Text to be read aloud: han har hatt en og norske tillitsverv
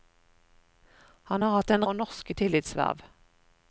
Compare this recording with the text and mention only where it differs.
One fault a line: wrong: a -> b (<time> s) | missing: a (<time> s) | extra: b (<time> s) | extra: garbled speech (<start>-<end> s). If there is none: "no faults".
no faults